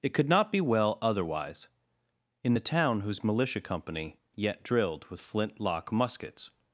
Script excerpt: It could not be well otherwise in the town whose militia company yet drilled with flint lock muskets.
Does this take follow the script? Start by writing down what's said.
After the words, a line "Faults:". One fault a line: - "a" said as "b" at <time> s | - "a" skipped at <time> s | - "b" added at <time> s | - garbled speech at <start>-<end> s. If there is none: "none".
It could not be well otherwise in the town whose militia company yet drilled with flint lock muskets.
Faults:
none